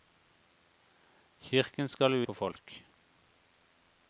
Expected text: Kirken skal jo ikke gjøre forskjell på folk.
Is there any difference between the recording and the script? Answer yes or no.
yes